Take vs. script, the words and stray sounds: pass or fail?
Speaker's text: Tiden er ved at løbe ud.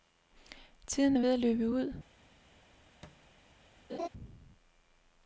fail